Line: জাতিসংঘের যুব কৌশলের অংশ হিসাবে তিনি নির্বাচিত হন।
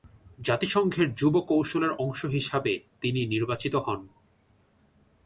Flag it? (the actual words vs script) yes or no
no